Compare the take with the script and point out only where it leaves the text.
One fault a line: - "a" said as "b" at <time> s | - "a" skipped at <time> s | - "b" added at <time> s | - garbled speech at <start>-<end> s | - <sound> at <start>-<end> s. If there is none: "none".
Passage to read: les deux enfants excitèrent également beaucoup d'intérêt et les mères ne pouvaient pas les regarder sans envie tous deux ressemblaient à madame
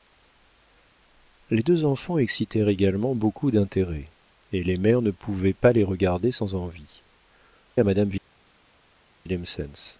- "tous deux ressemblaient" skipped at 7.0 s